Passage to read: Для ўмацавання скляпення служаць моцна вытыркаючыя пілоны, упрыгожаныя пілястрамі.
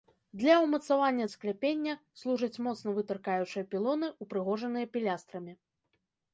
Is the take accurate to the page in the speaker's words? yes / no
yes